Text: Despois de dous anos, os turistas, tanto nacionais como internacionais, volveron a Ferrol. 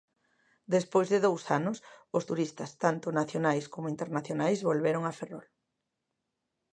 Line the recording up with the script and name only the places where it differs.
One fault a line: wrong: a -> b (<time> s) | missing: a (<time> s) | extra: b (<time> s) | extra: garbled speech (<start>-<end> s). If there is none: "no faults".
no faults